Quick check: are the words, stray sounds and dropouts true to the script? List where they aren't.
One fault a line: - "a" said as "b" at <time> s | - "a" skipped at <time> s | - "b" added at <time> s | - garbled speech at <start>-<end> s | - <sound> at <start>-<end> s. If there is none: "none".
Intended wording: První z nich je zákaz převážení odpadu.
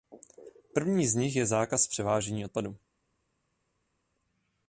none